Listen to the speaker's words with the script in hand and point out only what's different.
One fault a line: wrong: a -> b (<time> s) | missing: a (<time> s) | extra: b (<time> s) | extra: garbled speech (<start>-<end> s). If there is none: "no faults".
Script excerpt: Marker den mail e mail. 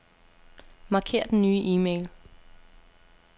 wrong: mail -> nye (1.4 s)